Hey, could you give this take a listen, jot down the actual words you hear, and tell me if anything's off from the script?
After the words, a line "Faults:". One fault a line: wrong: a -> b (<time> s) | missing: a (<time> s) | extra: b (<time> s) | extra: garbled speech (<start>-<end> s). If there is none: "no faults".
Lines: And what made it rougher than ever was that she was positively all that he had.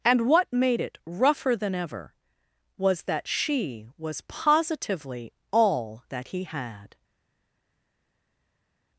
And what made it rougher than ever was that she was positively all that he had.
Faults:
no faults